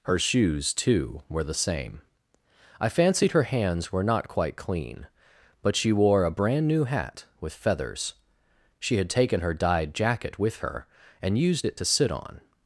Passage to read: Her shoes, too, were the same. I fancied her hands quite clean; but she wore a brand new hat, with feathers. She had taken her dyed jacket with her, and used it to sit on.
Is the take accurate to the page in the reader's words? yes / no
no